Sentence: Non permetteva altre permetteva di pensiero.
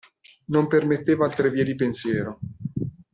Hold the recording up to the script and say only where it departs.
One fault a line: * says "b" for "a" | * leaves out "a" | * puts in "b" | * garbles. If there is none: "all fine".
* says "vie" for "permetteva"